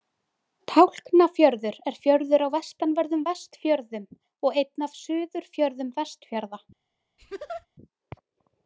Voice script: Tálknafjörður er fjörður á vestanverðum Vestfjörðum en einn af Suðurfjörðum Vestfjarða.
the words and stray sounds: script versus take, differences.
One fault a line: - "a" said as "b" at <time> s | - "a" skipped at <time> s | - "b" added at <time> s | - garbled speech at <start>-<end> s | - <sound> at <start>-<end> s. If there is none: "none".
- "en" said as "og" at 4.5 s
- laugh at 7.2-7.7 s